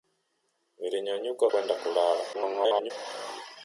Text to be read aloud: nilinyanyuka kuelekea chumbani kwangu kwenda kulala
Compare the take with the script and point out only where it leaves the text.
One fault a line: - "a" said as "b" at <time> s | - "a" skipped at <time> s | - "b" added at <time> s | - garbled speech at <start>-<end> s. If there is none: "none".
- "kuelekea chumbani kwangu" skipped at 1.5 s
- garbled speech at 2.3-2.9 s